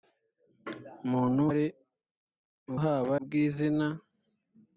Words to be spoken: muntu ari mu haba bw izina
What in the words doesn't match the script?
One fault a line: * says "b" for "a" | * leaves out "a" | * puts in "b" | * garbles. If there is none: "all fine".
all fine